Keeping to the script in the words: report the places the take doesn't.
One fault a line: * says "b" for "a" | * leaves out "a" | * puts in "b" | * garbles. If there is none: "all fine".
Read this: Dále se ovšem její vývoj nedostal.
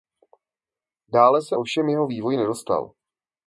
* says "jeho" for "její"